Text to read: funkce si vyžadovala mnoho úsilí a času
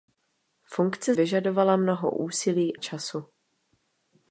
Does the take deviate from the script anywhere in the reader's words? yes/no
yes